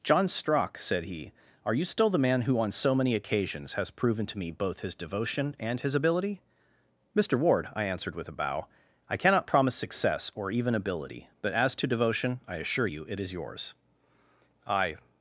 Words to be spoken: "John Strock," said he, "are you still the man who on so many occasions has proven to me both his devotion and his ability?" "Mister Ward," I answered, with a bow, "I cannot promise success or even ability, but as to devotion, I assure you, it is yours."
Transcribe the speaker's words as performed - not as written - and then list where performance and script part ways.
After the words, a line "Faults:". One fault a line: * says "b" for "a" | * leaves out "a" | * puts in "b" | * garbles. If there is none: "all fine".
"John Strock," said he, "are you still the man who on so many occasions has proven to me both his devotion and his ability?" "Mister Ward," I answered, with a bow, "I cannot promise success or even ability, but as to devotion, I assure you, it is yours." "I
Faults:
* puts in "I"